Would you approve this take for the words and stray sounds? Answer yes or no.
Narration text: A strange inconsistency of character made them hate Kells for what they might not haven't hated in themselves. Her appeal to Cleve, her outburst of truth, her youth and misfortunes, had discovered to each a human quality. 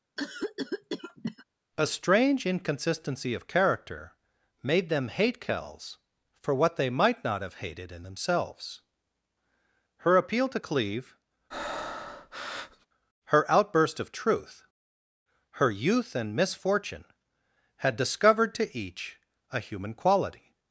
no